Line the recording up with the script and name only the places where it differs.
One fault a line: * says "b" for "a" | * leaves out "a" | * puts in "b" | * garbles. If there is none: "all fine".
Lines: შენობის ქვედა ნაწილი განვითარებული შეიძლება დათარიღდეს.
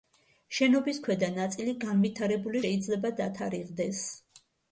all fine